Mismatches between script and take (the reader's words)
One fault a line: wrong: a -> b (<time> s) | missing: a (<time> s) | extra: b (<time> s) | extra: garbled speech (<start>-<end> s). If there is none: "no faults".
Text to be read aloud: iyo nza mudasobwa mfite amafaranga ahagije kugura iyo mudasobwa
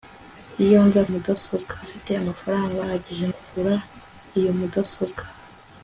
no faults